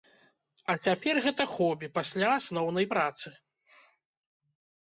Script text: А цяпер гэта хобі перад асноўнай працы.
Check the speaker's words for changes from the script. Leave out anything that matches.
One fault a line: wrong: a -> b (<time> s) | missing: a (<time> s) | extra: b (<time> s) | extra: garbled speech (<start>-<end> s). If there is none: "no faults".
wrong: перад -> пасля (2.0 s)